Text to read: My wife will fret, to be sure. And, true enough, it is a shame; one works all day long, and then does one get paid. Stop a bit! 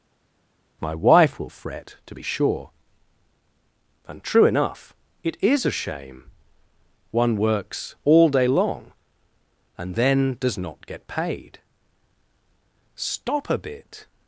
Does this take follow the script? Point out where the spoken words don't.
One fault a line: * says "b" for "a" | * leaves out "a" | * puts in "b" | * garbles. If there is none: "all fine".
* says "not" for "one"